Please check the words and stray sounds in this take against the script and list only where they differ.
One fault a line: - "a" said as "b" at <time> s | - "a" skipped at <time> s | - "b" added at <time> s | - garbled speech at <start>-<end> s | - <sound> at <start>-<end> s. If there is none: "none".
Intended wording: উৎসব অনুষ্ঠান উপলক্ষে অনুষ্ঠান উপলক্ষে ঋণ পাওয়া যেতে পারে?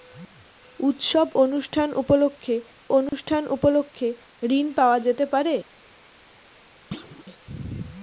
- dropout at 3.1-3.1 s
- thud at 6.9-7.2 s